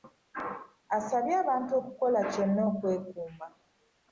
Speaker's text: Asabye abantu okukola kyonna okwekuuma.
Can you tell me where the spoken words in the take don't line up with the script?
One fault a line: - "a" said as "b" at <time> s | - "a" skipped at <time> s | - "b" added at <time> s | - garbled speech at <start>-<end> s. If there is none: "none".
none